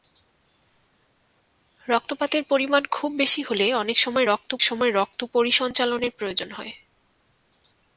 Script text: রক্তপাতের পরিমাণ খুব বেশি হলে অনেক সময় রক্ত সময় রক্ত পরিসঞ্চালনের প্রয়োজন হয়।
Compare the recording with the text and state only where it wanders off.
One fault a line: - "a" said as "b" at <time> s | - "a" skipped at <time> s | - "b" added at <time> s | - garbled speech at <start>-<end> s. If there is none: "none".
none